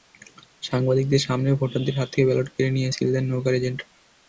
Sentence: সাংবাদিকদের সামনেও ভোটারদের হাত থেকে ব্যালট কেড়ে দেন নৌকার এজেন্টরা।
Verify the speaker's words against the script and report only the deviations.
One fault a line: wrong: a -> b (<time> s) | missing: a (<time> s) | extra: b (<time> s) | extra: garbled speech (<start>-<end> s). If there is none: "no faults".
extra: নিয়ে সিল (2.7 s)